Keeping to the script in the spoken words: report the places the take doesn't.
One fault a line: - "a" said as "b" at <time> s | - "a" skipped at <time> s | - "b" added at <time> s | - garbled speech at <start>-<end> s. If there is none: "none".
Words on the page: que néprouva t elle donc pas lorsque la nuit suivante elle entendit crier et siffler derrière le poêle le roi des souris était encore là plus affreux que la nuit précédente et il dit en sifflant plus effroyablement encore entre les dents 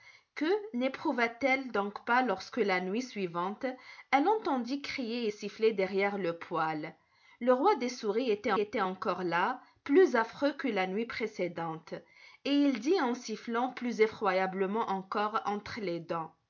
- "était" added at 8.6 s